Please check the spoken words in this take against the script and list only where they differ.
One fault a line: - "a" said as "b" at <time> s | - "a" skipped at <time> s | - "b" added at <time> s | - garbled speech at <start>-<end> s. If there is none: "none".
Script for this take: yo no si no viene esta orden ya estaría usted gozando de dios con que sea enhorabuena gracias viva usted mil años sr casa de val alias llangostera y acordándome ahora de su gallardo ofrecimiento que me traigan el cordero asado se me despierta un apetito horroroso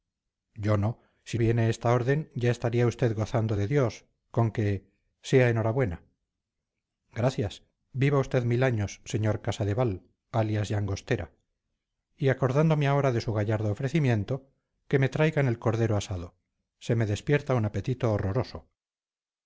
- "no" skipped at 1.4 s